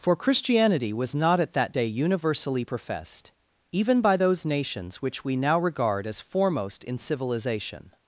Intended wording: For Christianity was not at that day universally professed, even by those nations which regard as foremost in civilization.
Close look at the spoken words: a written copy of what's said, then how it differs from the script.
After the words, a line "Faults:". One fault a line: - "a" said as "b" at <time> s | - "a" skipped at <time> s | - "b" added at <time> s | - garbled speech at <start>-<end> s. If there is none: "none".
For Christianity was not at that day universally professed, even by those nations which we now regard as foremost in civilization.
Faults:
- "we now" added at 5.2 s